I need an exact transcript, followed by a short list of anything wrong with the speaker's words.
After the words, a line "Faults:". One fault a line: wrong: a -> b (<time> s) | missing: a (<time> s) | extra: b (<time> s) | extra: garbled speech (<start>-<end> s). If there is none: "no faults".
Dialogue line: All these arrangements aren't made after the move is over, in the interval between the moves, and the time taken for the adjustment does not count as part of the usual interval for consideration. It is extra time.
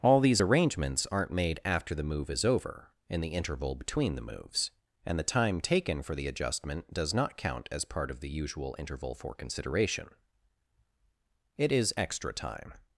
All these arrangements aren't made after the move is over, in the interval between the moves, and the time taken for the adjustment does not count as part of the usual interval for consideration. It is extra time.
Faults:
no faults